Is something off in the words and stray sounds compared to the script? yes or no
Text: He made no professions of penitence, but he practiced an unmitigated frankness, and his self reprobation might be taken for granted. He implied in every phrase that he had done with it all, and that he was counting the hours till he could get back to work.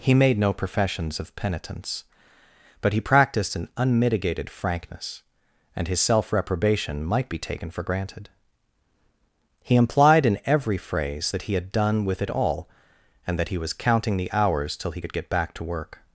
no